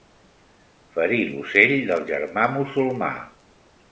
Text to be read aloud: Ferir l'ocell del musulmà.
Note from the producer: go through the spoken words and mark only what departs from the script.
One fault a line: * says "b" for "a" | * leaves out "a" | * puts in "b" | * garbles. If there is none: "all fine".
* puts in "germà"